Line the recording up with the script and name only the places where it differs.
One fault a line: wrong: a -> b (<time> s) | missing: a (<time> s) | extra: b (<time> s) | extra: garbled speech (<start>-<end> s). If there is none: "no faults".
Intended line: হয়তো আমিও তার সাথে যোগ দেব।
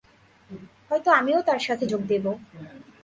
no faults